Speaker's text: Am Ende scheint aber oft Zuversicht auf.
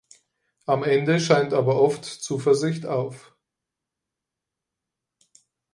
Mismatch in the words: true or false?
false